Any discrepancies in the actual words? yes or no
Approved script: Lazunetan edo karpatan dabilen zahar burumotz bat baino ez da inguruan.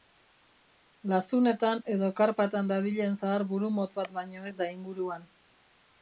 no